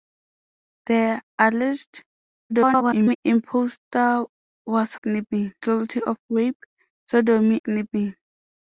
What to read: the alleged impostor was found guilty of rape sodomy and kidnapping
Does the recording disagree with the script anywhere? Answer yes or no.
yes